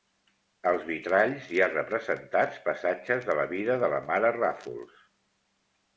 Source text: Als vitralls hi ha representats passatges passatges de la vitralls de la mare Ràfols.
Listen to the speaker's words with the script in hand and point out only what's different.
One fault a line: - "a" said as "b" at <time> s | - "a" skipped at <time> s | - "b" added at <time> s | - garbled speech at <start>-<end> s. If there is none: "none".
- "passatges" skipped at 3.3 s
- "vitralls" said as "vida" at 3.5 s